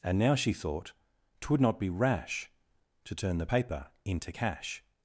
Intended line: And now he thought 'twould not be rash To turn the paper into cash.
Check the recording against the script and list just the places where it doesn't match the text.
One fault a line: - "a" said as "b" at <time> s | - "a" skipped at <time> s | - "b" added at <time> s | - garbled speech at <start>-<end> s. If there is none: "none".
- "he" said as "she" at 0.3 s